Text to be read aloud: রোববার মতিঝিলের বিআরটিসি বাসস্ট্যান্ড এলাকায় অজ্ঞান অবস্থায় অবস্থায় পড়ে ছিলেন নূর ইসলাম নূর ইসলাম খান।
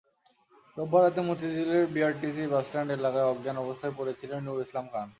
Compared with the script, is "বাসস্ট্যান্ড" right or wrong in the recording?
right